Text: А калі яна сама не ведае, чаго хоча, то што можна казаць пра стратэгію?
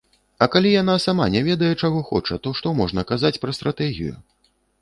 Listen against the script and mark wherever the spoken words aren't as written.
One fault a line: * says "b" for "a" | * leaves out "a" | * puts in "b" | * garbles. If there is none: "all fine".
all fine